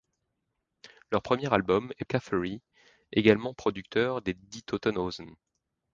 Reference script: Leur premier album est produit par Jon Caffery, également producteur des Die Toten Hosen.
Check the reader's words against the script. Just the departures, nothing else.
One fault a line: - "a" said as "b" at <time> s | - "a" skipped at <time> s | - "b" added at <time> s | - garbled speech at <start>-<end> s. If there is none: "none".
- "produit par Jon" skipped at 2.0 s